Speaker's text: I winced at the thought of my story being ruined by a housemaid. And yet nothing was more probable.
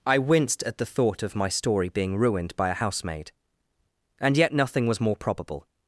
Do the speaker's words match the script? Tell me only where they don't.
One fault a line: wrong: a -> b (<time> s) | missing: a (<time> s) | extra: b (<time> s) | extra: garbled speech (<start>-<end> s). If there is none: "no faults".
no faults